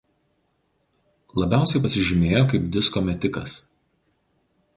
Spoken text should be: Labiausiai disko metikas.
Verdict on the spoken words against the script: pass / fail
fail